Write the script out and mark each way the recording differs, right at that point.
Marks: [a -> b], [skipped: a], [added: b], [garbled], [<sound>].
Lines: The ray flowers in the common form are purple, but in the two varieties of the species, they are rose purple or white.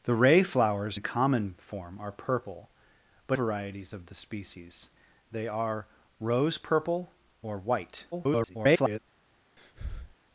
The ray flowers [skipped: in] the common form are purple, but [skipped: in the two] varieties of the species, they are rose purple or white. [garbled] [breath]